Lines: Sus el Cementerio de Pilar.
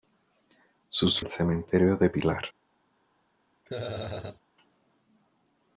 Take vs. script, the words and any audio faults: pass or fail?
fail